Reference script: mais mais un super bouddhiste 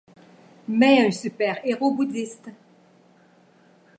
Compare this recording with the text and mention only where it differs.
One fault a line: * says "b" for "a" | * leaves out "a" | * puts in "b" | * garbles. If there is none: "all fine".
* leaves out "mais"
* puts in "héros"